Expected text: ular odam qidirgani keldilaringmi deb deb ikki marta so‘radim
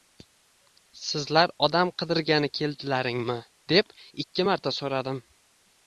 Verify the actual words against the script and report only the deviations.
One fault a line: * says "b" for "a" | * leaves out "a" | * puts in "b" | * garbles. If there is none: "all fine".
* says "sizlar" for "ular"
* leaves out "deb"